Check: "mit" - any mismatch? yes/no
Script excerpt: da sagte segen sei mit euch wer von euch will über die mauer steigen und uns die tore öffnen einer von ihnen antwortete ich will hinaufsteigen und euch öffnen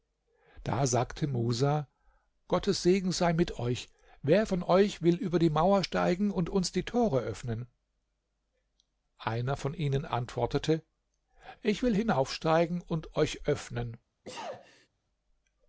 no